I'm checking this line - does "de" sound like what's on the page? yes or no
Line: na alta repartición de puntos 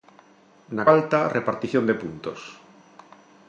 yes